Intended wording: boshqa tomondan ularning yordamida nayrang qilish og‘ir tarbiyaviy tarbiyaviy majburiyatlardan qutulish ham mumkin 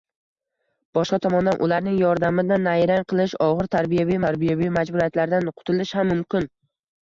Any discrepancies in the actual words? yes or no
no